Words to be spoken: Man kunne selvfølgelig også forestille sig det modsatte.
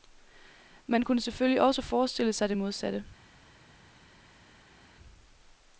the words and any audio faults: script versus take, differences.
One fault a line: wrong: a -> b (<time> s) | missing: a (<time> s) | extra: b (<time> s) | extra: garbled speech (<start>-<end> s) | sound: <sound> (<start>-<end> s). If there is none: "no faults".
no faults